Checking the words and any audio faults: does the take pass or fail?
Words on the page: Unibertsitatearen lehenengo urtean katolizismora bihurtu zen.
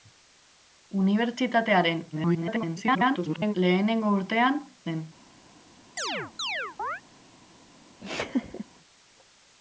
fail